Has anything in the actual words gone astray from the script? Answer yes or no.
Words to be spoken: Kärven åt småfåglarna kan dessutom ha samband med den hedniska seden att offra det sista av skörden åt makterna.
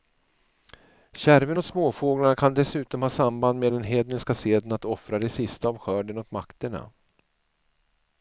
no